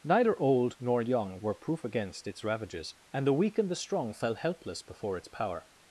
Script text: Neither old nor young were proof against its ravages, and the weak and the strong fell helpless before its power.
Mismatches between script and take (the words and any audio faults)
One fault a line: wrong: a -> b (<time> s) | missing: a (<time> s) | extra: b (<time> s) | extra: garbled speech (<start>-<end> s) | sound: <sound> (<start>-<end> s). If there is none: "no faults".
no faults